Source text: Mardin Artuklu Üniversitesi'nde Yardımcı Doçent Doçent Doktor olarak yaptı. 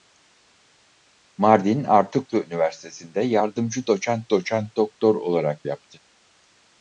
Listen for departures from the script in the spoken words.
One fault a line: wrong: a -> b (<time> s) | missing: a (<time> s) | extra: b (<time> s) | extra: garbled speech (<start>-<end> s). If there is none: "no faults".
no faults